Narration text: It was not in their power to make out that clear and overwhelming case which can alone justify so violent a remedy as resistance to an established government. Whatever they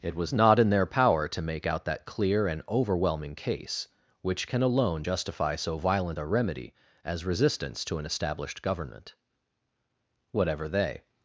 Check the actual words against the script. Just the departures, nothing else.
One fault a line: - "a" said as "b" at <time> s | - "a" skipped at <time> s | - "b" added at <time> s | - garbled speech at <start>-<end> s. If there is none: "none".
none